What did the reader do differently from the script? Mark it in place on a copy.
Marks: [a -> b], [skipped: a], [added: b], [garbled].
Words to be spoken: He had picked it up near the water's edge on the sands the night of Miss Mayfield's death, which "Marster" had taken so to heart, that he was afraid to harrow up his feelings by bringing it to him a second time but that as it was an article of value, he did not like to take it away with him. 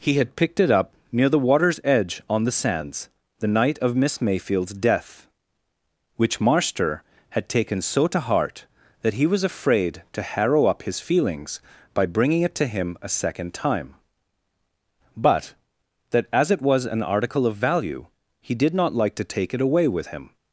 He had picked it up near the water's edge on the sands the night of Miss Mayfield's death, which "Marster" had taken so to heart, that he was afraid to harrow up his feelings by bringing it to him a second time but that as it was an article of value, he did not like to take it away with him.